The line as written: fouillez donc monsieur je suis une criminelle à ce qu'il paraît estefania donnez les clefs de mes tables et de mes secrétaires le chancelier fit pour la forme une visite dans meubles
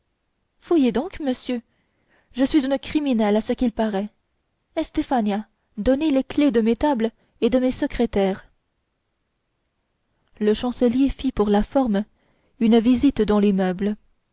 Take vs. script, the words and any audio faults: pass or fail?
fail